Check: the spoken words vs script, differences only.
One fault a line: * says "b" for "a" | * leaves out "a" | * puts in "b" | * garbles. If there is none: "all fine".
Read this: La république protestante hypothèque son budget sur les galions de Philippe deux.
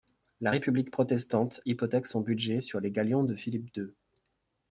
all fine